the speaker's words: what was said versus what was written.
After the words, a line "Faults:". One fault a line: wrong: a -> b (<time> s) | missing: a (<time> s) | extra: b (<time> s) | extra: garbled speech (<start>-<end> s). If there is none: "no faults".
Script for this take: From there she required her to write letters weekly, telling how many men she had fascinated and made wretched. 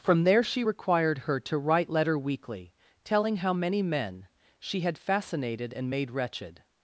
From there she required her to write letter weekly, telling how many men she had fascinated and made wretched.
Faults:
wrong: letters -> letter (1.9 s)